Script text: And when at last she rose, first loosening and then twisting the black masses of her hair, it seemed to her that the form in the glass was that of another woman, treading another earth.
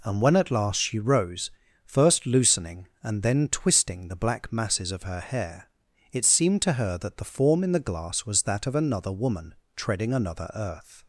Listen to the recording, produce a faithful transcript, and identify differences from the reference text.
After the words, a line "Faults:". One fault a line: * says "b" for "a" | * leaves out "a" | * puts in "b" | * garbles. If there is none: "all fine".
And when at last she rose, first loosening and then twisting the black masses of her hair, it seemed to her that the form in the glass was that of another woman, treading another earth.
Faults:
all fine